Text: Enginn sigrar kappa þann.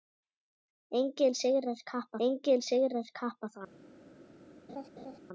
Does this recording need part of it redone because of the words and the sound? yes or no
yes